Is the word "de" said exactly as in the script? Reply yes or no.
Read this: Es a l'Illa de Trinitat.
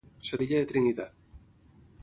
yes